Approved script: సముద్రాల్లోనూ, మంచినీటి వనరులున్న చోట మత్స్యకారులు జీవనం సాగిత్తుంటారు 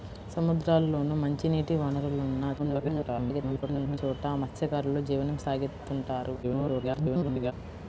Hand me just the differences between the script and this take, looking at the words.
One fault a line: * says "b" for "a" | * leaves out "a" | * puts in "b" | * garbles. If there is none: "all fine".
* garbles
* garbles